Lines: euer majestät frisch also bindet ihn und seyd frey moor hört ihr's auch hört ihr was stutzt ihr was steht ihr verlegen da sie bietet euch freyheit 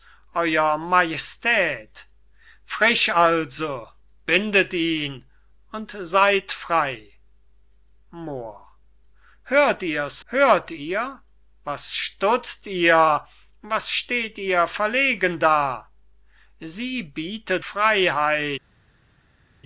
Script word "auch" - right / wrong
wrong